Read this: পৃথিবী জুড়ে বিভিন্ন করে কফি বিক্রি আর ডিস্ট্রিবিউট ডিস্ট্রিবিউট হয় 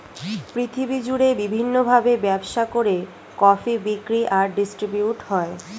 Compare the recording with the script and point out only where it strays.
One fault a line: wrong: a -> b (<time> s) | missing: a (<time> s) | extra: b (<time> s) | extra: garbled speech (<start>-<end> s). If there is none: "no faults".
extra: ভাবে ব্যবসা (1.9 s)
missing: ডিস্ট্রিবিউট (5.2 s)